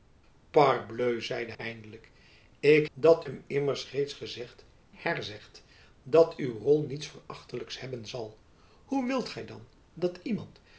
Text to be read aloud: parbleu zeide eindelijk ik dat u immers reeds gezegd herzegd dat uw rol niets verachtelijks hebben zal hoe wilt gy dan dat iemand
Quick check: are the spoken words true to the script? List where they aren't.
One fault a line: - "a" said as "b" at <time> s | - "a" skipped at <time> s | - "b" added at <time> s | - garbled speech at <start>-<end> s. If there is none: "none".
none